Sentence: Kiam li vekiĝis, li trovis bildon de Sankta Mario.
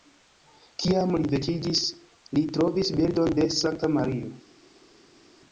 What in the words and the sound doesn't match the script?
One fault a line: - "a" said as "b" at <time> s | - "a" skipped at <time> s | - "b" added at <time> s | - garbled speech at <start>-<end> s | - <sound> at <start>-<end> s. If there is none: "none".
none